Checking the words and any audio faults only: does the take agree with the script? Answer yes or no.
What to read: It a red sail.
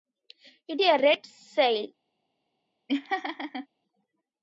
no